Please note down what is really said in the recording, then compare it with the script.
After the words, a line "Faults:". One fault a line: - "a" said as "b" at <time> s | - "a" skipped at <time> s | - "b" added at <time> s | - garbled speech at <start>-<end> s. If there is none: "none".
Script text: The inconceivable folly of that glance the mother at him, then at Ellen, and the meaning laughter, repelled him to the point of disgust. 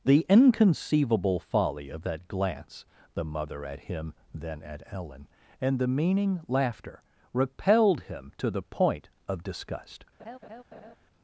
The inconceivable folly of that glance the mother at him, then at Ellen, and the meaning laughter, repelled him to the point of disgust.
Faults:
none